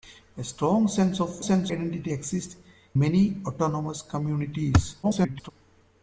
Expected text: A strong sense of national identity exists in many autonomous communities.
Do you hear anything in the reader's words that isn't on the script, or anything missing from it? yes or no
yes